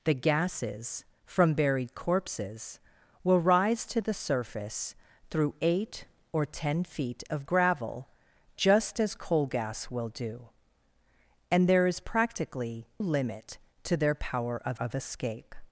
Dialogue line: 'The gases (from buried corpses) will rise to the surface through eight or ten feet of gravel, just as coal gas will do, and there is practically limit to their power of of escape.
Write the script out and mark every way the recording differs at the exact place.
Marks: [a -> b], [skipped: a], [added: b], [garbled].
'The gases (from buried corpses) will rise to the surface through eight or ten feet of gravel, just as coal gas will do, and there is practically limit to their power of of escape.